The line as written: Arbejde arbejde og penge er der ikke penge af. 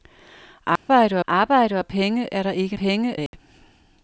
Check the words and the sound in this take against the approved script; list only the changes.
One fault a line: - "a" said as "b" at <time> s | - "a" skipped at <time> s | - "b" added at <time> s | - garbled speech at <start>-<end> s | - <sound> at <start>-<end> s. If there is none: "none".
- dropout at 0.8-0.9 s
- dropout at 3.3-3.3 s